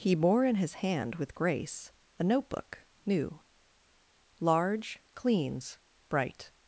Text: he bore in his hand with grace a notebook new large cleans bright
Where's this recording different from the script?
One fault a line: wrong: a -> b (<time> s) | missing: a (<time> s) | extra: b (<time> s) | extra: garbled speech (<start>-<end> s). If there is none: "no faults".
no faults